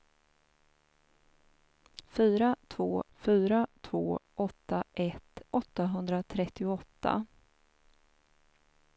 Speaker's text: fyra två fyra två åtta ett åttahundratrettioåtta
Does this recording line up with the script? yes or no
yes